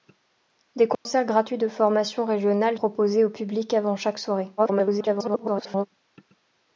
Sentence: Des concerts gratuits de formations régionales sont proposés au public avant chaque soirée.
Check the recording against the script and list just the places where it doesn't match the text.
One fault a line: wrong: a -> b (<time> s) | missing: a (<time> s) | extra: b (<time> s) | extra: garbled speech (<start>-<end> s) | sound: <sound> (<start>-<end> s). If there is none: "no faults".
sound: dropout (0.9-1.1 s)
missing: sont (2.8 s)
extra: garbled speech (4.6-5.9 s)